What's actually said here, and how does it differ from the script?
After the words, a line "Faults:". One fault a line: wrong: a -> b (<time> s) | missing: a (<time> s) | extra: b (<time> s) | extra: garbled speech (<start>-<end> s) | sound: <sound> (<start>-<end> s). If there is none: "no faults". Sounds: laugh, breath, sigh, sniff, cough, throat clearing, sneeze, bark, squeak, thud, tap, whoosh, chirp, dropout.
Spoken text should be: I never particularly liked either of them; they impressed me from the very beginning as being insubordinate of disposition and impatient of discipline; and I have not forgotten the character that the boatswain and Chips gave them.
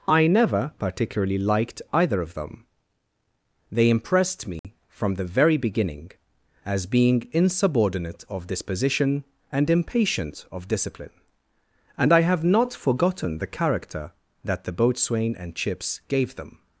I never particularly liked either of them; they impressed me from the very beginning as being insubordinate of disposition and impatient of discipline; and I have not forgotten the character that the boatswain and Chips gave them.
Faults:
sound: dropout (4.6-4.6 s)